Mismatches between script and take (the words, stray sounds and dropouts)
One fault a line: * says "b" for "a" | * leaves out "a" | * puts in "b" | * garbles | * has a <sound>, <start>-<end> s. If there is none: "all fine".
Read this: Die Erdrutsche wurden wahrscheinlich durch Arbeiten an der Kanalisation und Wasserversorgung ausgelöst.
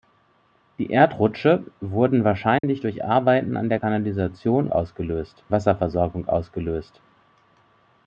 * has a dropout, 2.6-2.6 s
* says "ausgelöst" for "und"